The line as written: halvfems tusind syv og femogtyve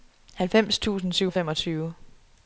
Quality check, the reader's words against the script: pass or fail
pass